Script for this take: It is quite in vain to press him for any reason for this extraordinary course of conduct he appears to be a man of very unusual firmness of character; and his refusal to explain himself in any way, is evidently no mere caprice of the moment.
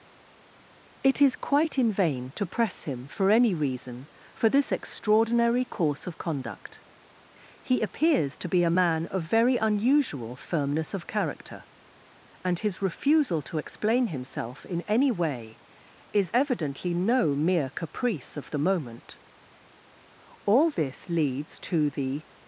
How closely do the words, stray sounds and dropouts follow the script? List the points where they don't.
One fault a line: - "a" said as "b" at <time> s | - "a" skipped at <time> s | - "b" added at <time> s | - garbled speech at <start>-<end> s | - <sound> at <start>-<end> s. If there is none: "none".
- "All this leads to the" added at 20.5 s